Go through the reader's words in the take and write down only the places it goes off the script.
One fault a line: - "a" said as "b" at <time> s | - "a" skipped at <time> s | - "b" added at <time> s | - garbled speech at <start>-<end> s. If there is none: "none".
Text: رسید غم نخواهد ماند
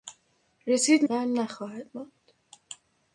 none